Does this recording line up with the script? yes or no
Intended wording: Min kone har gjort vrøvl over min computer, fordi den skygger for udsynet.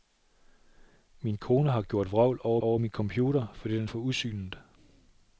no